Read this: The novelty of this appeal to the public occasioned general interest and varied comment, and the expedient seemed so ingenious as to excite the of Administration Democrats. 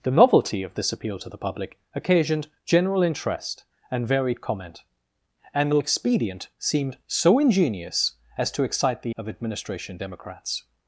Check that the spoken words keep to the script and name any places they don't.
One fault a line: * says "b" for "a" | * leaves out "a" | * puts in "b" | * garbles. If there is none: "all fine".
all fine